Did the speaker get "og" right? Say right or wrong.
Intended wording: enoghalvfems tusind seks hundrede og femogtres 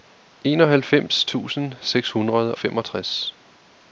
wrong